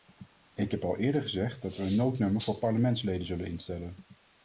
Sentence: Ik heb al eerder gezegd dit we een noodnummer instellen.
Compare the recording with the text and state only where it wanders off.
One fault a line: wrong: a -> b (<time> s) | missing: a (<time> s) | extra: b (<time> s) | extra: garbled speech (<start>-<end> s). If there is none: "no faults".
wrong: dit -> dat (1.6 s)
extra: voor parlementsleden zullen (2.4 s)